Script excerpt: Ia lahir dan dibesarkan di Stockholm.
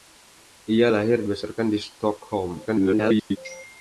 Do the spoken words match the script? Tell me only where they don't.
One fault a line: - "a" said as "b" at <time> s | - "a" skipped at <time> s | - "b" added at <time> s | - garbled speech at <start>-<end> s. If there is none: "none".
- "dan" skipped at 1.3 s
- garbled speech at 2.6-3.4 s